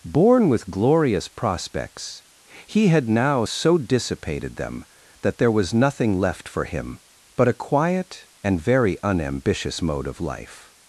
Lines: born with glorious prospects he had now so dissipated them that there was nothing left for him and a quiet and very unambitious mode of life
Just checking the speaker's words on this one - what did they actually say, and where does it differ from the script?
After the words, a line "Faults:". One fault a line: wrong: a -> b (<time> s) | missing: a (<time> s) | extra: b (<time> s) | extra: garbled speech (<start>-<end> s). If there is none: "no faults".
born with glorious prospects he had now so dissipated them that there was nothing left for him but a quiet and very unambitious mode of life
Faults:
wrong: and -> but (7.4 s)